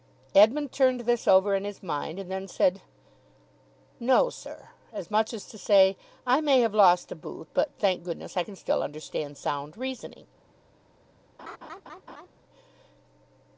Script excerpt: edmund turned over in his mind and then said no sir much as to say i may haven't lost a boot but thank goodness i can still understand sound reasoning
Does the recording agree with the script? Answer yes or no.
no